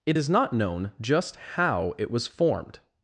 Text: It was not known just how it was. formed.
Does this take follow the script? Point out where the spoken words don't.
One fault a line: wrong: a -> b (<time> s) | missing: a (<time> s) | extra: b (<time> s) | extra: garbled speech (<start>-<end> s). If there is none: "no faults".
wrong: was -> is (0.2 s)